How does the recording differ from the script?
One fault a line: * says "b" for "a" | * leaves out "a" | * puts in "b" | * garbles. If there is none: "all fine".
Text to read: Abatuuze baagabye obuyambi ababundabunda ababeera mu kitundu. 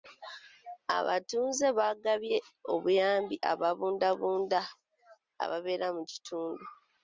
all fine